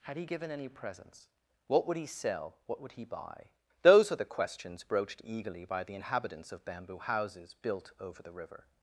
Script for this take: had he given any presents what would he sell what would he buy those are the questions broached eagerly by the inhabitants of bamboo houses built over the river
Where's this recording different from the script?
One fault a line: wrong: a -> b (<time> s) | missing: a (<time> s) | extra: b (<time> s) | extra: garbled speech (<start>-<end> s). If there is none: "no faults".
no faults